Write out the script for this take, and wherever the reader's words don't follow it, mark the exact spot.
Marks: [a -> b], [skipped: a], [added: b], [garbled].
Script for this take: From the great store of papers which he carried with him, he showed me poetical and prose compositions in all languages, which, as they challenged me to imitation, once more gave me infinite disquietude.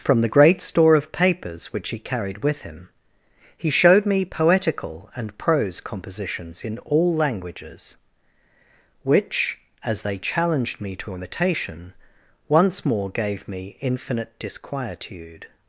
From the great store of papers which he carried with him, he showed me poetical and prose compositions in all languages, which, as they challenged me to imitation, once more gave me infinite disquietude.